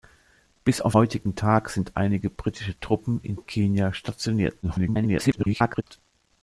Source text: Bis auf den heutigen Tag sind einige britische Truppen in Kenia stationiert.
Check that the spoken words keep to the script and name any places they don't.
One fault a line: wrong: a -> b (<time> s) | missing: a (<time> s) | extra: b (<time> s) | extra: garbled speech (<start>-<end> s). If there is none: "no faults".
missing: den (0.9 s)
extra: garbled speech (4.6-5.8 s)